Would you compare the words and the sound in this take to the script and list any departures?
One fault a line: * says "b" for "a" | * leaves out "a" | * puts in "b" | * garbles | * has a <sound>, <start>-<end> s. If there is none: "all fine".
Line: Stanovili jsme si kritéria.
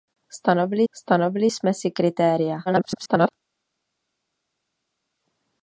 * puts in "stanovili"
* garbles